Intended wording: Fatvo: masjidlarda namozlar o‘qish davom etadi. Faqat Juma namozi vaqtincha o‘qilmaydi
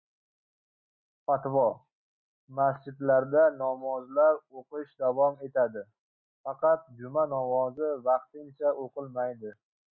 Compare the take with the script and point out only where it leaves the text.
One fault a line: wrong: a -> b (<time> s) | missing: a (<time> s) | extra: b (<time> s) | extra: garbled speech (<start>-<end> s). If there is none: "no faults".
no faults